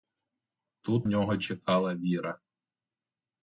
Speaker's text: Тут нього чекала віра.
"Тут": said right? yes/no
yes